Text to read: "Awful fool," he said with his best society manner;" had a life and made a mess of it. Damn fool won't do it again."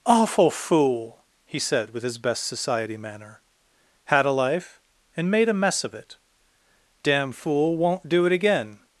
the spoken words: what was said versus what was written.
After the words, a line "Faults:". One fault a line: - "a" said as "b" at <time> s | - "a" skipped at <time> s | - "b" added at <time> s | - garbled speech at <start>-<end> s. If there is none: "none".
"Awful fool," he said with his best society manner;" had a life and made a mess of it. Damn fool won't do it again."
Faults:
none